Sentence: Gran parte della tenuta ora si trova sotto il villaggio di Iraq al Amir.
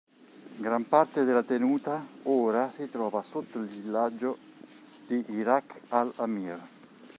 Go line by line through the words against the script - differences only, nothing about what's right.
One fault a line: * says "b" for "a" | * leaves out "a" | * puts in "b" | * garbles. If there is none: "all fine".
all fine